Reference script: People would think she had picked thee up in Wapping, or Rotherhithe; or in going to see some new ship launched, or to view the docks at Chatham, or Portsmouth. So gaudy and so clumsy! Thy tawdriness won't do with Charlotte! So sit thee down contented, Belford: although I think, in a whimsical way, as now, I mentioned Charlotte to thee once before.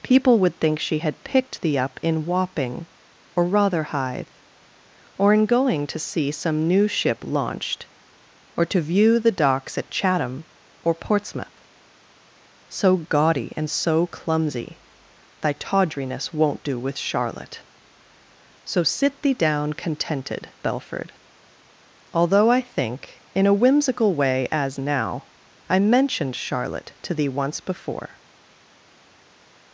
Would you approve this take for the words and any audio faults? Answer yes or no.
yes